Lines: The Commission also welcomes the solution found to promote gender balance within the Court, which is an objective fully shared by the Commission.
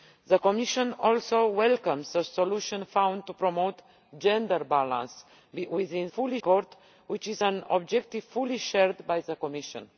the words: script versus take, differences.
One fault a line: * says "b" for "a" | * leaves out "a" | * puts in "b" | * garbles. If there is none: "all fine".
* says "fully" for "the"